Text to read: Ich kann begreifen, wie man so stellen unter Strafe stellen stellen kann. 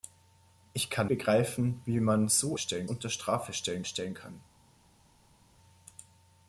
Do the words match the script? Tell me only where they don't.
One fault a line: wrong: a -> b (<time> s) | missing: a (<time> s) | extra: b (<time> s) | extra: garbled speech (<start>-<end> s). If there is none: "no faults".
no faults